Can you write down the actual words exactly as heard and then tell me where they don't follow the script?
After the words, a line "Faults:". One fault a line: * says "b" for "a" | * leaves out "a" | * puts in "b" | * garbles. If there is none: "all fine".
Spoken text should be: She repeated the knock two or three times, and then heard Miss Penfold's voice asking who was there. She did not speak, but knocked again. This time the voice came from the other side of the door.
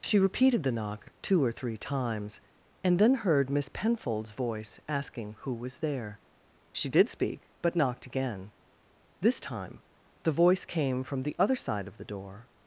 She repeated the knock two or three times, and then heard Miss Penfold's voice asking who was there. She did speak, but knocked again. This time the voice came from the other side of the door.
Faults:
* leaves out "not"